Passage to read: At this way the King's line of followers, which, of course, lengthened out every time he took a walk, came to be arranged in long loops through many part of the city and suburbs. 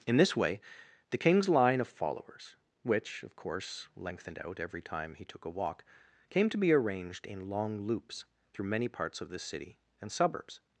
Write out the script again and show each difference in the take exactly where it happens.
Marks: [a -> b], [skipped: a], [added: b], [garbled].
[At -> In] this way the King's line of followers, which, of course, lengthened out every time he took a walk, came to be arranged in long loops through many [part -> parts] of the city and suburbs.